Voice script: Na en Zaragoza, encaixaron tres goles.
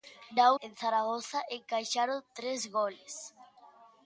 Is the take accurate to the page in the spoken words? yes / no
yes